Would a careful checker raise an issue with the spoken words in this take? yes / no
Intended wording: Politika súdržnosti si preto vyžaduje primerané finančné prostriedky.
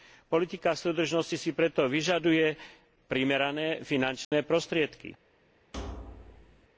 no